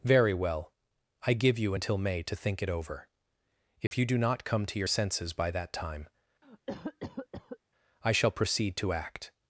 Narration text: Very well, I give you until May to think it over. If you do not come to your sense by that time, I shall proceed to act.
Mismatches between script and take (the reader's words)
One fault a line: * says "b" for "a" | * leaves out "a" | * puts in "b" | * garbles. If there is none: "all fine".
* says "senses" for "sense"